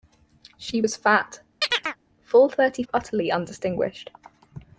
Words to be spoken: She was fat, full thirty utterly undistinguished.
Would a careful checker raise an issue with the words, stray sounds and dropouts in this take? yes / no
yes